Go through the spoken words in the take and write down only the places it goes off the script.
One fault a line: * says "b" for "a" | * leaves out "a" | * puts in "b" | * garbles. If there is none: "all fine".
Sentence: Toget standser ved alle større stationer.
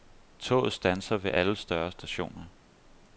all fine